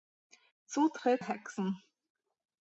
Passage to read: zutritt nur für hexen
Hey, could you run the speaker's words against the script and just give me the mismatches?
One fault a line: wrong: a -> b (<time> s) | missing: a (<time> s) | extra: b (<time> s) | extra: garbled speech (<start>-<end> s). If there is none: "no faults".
missing: nur für (1.2 s)